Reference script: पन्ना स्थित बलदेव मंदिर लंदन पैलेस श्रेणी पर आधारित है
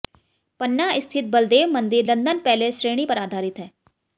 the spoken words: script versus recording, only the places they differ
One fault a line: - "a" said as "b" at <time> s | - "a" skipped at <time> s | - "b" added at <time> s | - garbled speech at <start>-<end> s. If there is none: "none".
none